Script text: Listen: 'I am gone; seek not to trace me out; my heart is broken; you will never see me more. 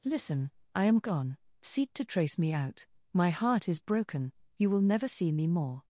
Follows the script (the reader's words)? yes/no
no